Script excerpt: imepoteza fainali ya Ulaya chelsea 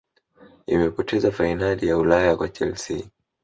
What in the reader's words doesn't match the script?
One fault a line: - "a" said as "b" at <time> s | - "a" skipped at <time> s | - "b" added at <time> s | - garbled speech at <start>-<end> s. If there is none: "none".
- "kwa" added at 2.4 s